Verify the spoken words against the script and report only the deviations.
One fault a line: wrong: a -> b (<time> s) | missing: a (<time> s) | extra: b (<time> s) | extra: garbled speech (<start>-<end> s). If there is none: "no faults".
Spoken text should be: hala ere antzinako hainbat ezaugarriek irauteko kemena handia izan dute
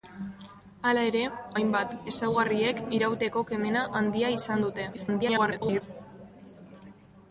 missing: antzinako (1.2 s)
extra: garbled speech (4.9-5.8 s)